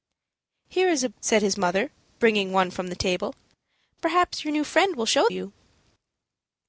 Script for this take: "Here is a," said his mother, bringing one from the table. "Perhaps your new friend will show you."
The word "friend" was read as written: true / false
true